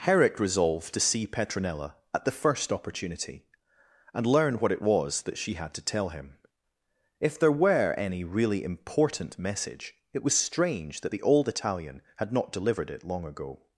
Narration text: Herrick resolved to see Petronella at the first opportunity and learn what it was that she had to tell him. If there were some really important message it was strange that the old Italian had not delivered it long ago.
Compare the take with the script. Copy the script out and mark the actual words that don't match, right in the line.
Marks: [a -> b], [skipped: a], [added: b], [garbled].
Herrick resolved to see Petronella at the first opportunity and learn what it was that she had to tell him. If there were [some -> any] really important message it was strange that the old Italian had not delivered it long ago.